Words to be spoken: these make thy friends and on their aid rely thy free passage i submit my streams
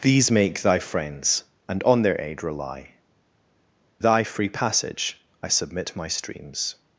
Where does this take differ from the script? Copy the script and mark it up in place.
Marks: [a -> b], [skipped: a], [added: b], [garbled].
these make thy friends and on their aid rely thy free passage i submit my streams